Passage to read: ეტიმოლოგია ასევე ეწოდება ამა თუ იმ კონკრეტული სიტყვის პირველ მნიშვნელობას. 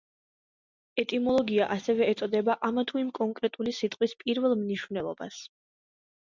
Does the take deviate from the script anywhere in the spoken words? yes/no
no